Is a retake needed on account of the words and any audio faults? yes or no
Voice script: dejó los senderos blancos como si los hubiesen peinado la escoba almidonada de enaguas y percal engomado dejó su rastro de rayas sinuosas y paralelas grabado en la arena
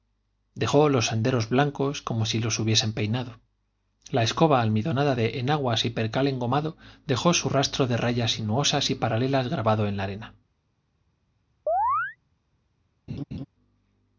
yes